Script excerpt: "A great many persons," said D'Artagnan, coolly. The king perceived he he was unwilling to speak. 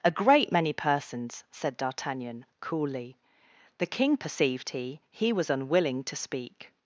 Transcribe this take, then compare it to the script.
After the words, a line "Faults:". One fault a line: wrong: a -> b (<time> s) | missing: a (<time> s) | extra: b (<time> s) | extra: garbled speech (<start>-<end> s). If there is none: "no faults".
"A great many persons," said D'Artagnan, coolly. The king perceived he he was unwilling to speak.
Faults:
no faults